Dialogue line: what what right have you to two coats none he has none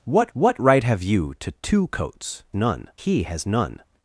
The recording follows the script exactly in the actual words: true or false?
true